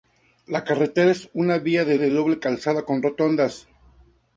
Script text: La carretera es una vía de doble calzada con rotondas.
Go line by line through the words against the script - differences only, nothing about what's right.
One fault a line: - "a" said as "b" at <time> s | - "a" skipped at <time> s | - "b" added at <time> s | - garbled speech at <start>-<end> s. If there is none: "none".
- "de" added at 2.0 s